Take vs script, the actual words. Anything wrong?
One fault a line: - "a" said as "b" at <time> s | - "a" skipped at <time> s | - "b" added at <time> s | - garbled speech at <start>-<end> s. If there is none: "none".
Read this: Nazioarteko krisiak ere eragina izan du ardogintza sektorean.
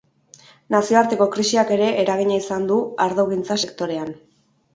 none